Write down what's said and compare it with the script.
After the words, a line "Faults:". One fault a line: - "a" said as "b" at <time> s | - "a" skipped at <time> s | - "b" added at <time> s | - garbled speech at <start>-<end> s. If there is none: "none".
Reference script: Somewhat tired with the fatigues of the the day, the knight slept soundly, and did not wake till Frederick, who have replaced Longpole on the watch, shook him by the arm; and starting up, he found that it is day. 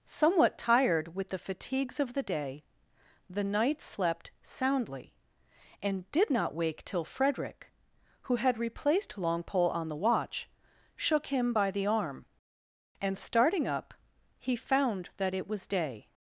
Somewhat tired with the fatigues of the day, the knight slept soundly, and did not wake till Frederick, who had replaced Longpole on the watch, shook him by the arm; and starting up, he found that it was day.
Faults:
- "the" skipped at 2.2 s
- "have" said as "had" at 8.4 s
- "is" said as "was" at 15.5 s